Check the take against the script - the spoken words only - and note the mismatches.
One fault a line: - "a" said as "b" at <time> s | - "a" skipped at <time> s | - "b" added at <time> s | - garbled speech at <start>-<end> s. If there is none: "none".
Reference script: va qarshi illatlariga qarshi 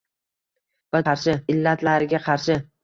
none